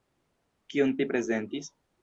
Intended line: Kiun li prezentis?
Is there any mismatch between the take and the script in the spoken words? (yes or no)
no